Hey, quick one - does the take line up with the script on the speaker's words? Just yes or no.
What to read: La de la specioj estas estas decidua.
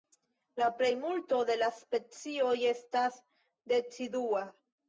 no